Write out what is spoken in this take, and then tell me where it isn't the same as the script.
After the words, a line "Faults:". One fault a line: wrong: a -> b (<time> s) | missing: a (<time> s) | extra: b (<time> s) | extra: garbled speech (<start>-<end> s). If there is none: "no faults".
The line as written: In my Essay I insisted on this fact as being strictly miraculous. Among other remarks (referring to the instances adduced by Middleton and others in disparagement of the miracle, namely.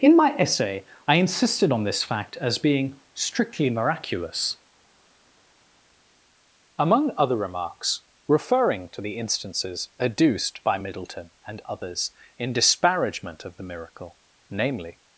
In my Essay I insisted on this fact as being strictly miraculous. Among other remarks (referring to the instances adduced by Middleton and others in disparagement of the miracle, namely.
Faults:
no faults